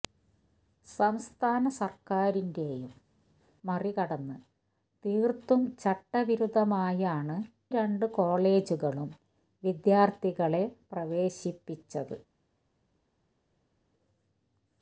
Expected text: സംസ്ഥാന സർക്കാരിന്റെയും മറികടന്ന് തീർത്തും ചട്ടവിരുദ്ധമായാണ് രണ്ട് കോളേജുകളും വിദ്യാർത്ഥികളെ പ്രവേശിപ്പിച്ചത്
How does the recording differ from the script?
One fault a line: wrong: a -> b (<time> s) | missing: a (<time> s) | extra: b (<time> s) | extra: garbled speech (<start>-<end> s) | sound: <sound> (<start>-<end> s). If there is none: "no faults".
no faults